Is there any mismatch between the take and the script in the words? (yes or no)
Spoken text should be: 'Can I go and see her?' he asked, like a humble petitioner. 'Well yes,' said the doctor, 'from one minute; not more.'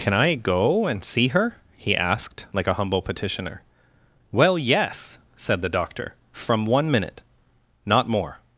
no